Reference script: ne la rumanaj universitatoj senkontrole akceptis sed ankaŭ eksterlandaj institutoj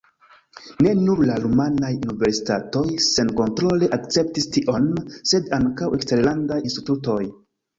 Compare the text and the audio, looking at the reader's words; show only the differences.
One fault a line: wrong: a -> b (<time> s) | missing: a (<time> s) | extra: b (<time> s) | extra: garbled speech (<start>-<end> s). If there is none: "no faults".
extra: nur (1.0 s)
extra: tion (4.6 s)